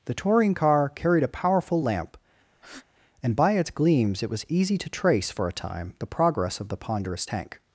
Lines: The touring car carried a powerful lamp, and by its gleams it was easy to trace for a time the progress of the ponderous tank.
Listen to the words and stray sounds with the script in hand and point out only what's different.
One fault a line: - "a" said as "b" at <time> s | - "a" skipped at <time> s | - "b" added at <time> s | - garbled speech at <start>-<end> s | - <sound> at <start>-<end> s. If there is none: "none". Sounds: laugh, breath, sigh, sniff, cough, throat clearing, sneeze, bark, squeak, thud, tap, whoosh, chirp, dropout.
- breath at 2.5-2.9 s